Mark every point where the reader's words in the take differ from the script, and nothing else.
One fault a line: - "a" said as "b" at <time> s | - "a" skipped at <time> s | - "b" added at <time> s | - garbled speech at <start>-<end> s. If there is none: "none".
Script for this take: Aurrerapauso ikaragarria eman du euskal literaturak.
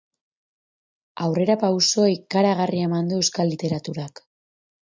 none